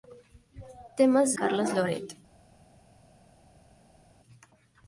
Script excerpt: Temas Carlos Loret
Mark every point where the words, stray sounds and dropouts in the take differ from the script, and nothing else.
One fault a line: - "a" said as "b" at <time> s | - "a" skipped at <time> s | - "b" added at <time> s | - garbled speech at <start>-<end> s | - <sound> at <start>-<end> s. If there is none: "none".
none